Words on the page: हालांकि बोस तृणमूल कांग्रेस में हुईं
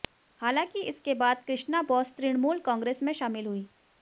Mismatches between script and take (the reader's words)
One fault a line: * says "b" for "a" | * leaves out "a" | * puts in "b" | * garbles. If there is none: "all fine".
* puts in "इसके बाद कृष्णा"
* puts in "शामिल"